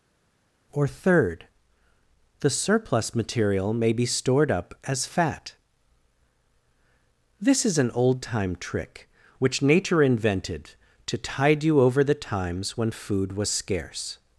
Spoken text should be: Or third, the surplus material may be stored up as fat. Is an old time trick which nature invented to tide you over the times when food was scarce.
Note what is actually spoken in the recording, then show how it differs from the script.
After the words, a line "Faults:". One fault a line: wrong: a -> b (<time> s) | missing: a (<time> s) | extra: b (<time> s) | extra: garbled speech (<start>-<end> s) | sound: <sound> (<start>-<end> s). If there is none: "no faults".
Or third, the surplus material may be stored up as fat. This is an old time trick which nature invented to tide you over the times when food was scarce.
Faults:
extra: This (7.4 s)